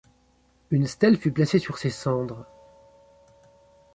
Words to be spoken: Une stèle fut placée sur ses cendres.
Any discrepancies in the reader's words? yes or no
no